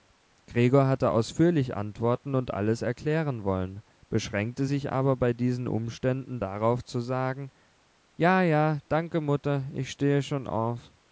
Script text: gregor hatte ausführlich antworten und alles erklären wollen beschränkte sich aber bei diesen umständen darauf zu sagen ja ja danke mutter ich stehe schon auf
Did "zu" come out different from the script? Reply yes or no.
no